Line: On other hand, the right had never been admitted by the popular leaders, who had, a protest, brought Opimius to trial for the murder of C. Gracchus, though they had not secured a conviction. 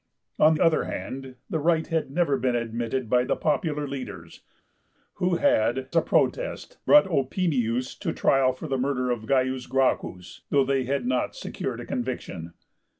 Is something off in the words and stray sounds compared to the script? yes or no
no